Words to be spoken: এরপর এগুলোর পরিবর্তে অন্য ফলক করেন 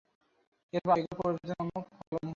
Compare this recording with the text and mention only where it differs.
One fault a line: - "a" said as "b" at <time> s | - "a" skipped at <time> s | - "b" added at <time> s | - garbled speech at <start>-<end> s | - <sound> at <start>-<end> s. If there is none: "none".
- dropout at 2.1-2.1 s